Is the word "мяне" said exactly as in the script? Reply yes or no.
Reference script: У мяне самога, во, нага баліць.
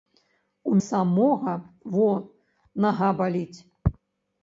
no